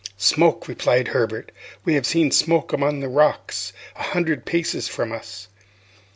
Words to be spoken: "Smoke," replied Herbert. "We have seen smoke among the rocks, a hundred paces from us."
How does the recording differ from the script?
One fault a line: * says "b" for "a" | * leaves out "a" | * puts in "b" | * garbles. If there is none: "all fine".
all fine